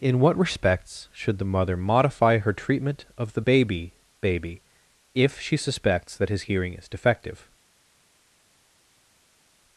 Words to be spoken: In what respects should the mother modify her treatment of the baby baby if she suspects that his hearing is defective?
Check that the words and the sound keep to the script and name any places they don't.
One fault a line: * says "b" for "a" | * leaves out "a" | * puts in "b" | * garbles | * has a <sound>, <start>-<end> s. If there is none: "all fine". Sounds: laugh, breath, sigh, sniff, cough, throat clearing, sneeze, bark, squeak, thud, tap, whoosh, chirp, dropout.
all fine